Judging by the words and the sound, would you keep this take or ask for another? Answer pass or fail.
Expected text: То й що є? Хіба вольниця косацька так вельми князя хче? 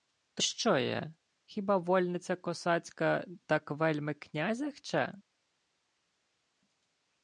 fail